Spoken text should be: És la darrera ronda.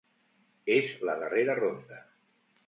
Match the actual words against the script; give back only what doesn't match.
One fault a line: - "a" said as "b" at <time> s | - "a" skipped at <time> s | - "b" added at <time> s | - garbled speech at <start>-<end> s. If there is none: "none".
none